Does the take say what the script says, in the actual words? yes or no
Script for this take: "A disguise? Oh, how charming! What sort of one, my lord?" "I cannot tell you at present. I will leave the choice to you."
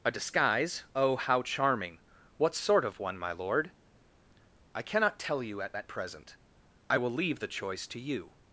no